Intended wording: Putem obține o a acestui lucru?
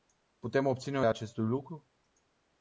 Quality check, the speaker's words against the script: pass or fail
pass